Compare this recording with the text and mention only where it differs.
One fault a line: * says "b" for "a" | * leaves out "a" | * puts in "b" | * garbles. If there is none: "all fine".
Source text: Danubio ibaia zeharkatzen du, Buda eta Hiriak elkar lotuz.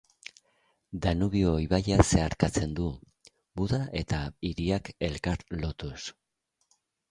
all fine